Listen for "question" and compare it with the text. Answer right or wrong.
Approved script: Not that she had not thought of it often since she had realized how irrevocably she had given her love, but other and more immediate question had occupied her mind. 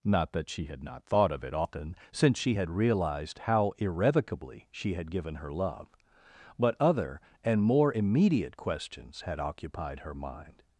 wrong